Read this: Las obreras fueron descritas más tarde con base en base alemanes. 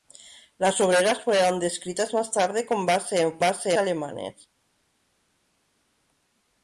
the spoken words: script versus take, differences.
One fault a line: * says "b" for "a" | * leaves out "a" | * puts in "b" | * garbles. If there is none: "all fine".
all fine